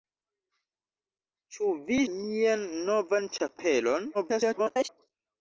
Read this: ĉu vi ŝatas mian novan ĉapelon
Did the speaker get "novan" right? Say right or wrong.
right